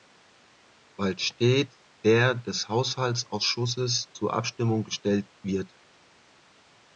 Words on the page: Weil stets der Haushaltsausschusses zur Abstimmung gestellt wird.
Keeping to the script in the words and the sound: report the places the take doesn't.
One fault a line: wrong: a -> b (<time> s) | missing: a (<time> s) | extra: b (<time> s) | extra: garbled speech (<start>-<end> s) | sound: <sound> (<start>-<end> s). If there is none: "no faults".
extra: des (2.3 s)